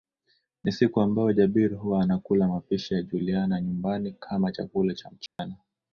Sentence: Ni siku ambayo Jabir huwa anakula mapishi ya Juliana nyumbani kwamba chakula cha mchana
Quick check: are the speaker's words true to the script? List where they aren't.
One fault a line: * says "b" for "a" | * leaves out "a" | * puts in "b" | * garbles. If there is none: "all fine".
* says "kama" for "kwamba"